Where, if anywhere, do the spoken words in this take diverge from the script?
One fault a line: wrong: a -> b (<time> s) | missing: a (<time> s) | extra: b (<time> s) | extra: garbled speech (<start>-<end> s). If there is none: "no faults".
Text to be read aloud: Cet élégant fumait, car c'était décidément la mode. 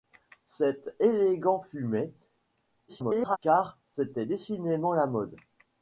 extra: garbled speech (2.9-3.4 s)